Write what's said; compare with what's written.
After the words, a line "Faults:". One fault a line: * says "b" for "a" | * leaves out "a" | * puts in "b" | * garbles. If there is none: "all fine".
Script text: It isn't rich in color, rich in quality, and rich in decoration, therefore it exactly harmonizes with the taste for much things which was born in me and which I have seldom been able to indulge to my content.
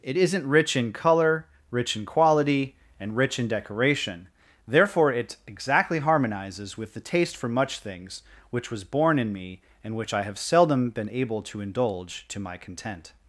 It isn't rich in color, rich in quality, and rich in decoration, therefore it exactly harmonizes with the taste for much things which was born in me and which I have seldom been able to indulge to my content.
Faults:
all fine